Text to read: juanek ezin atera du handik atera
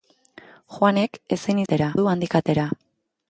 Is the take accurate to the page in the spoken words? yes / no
yes